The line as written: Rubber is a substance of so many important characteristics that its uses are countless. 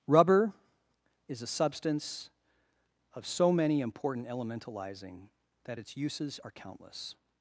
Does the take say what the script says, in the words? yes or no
no